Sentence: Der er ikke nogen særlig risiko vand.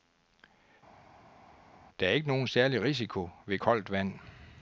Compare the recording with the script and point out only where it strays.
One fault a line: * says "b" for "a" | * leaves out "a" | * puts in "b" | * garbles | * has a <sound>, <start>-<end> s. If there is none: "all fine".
* puts in "ved koldt"